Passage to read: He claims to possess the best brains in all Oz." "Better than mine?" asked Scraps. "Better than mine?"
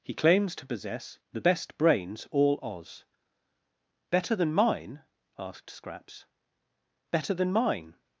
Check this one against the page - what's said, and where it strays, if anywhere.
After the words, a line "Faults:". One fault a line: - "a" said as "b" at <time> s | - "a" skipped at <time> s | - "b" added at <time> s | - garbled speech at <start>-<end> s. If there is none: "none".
He claims to possess the best brains all Oz." "Better than mine?" asked Scraps. "Better than mine?"
Faults:
- "in" skipped at 2.3 s